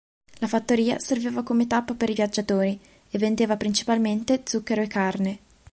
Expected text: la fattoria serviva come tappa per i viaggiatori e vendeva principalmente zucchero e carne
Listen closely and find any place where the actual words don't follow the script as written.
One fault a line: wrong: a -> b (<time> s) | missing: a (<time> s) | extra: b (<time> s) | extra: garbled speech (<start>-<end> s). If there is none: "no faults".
no faults